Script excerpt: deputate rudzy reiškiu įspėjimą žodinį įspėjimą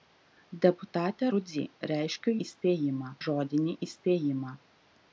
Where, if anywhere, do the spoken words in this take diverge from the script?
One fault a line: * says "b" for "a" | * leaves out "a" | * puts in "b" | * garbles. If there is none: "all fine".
all fine